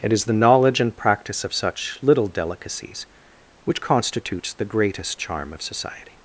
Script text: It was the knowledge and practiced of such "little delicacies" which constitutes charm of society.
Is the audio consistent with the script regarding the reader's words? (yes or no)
no